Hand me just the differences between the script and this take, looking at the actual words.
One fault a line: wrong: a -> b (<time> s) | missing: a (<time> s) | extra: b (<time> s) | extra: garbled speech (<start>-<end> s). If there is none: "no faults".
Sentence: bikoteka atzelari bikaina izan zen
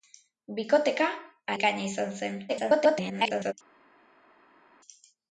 missing: atzelari (1.1 s)
extra: garbled speech (2.5-3.5 s)